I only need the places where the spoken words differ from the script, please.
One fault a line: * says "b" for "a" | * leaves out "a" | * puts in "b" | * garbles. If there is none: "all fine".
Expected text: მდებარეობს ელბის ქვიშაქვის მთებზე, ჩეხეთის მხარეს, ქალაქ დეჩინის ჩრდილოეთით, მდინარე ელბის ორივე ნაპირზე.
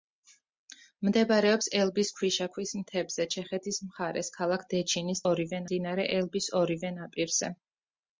* says "ორივე" for "ჩრდილოეთით"